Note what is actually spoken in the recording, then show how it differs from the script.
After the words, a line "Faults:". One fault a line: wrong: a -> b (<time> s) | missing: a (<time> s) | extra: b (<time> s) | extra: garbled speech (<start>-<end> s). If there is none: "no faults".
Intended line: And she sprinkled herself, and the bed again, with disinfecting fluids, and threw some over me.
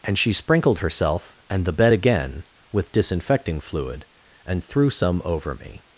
And she sprinkled herself, and the bed again, with disinfecting fluid, and threw some over me.
Faults:
wrong: fluids -> fluid (3.6 s)